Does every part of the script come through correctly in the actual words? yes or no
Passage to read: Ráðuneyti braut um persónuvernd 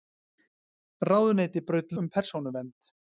yes